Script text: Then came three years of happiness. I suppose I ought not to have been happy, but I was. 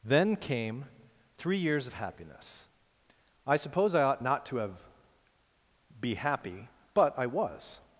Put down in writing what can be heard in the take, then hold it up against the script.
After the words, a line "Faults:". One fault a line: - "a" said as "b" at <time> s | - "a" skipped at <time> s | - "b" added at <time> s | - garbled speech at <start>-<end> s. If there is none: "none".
Then came three years of happiness. I suppose I ought not to have be happy, but I was.
Faults:
- "been" said as "be" at 6.0 s